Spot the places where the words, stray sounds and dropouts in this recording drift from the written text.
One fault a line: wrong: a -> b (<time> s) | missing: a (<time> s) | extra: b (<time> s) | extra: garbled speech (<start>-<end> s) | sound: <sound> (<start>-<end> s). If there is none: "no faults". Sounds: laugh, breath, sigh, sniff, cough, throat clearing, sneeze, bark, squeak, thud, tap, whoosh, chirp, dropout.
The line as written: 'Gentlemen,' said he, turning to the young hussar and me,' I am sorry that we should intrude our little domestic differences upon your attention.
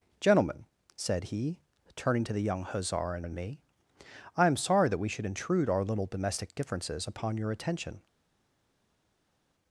extra: and (3.2 s)